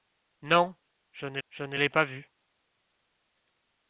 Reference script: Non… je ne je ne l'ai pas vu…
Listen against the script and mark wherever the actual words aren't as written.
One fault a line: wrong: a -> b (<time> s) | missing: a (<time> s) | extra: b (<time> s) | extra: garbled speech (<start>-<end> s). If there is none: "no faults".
no faults